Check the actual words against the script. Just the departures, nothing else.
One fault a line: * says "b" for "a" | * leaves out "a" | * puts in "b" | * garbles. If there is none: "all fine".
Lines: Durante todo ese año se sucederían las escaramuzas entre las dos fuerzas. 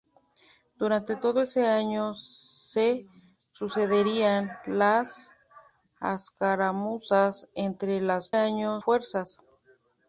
* says "año" for "dos"